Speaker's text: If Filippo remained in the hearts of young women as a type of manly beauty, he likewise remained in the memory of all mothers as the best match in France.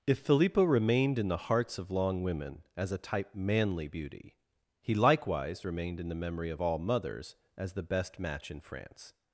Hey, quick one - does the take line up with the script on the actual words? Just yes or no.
no